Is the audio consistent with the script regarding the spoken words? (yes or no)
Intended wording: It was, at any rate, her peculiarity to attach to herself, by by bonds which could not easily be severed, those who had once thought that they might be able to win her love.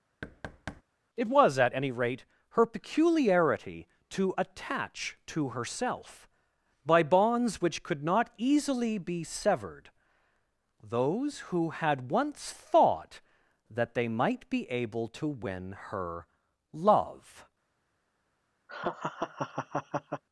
no